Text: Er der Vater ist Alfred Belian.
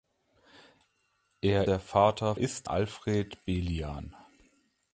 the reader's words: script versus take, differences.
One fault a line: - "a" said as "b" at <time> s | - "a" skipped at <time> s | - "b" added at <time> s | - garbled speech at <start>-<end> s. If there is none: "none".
none